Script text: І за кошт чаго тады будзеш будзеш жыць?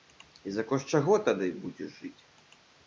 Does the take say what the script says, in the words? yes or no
no